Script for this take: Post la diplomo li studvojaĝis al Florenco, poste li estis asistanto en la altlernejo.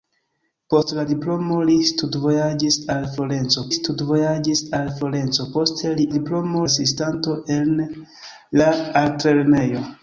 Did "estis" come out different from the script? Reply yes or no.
yes